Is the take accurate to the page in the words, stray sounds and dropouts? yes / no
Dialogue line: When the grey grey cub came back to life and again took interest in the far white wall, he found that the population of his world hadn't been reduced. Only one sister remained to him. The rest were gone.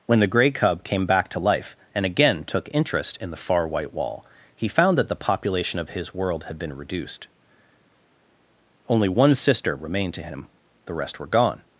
no